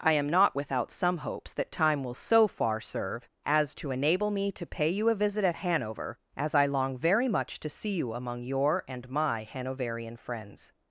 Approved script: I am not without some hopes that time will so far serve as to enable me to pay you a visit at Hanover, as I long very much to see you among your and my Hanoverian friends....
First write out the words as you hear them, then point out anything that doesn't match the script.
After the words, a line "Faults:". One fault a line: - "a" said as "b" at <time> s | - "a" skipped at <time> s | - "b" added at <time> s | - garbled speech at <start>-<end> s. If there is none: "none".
I am not without some hopes that time will so far serve as to enable me to pay you a visit at Hanover, as I long very much to see you among your and my Hanoverian friends....
Faults:
none